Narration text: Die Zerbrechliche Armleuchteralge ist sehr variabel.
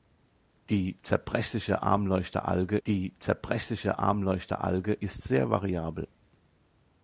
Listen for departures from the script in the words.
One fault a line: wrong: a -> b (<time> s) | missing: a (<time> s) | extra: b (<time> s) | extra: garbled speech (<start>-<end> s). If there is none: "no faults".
extra: die Zerbrechliche Armleuchteralge (2.9 s)